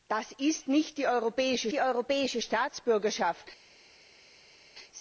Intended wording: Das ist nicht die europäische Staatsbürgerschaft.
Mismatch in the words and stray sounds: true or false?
true